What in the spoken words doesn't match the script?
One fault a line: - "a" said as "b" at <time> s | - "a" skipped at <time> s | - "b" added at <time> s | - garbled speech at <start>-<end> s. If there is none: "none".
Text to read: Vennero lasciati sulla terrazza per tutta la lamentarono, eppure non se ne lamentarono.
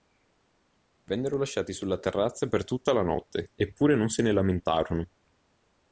- "lamentarono" said as "notte" at 3.0 s